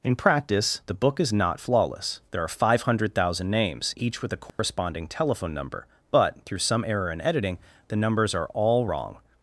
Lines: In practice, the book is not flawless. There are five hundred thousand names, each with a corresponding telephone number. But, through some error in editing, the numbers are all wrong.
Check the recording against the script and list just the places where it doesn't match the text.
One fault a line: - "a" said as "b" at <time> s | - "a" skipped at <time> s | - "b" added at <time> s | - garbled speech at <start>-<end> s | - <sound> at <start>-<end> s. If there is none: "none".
- dropout at 4.5-4.6 s